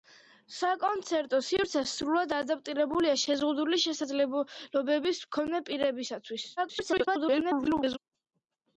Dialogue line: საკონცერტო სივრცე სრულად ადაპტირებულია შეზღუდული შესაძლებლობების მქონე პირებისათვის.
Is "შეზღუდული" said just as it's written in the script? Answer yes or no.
yes